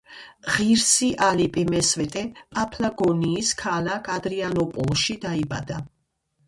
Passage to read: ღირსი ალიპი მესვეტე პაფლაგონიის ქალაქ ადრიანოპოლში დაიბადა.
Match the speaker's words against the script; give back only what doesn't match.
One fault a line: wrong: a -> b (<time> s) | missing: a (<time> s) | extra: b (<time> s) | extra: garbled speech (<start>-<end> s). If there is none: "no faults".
no faults